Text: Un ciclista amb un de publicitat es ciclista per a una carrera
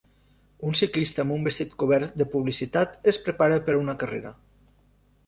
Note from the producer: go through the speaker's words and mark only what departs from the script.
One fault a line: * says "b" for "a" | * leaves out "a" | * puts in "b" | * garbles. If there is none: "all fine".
* puts in "vestit cobert"
* says "prepara" for "ciclista"